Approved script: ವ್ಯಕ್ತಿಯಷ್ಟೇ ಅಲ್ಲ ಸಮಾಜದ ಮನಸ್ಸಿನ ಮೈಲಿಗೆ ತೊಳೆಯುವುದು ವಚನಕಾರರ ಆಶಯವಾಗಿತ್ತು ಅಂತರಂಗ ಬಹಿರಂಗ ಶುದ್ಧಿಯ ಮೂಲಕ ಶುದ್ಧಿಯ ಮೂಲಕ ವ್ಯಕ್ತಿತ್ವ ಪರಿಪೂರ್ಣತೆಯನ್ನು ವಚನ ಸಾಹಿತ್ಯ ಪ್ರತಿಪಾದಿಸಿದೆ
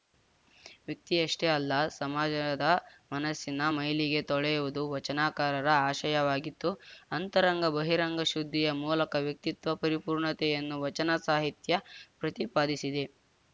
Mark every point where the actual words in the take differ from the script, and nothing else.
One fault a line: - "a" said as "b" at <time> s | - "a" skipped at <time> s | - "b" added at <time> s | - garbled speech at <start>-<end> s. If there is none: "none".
- "ಶುದ್ಧಿಯ ಮೂಲಕ" skipped at 9.2 s